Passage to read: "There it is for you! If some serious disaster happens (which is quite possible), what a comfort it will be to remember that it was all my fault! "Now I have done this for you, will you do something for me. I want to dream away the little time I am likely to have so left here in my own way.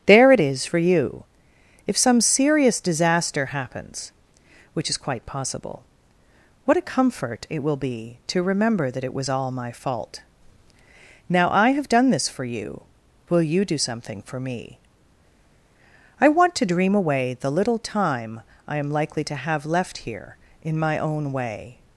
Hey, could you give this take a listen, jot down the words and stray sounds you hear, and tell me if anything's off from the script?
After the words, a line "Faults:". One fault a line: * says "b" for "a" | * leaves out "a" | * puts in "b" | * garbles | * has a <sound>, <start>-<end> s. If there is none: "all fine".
"There it is for you! If some serious disaster happens (which is quite possible), what a comfort it will be to remember that it was all my fault! "Now I have done this for you, will you do something for me. I want to dream away the little time I am likely to have left here in my own way.
Faults:
* leaves out "so"